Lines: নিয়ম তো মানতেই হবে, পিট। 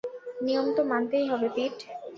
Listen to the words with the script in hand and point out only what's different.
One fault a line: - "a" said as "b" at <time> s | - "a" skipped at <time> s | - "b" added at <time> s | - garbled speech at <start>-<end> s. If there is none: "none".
none